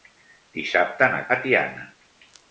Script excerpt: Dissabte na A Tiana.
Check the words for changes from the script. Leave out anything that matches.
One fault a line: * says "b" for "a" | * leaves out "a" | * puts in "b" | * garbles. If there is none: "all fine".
all fine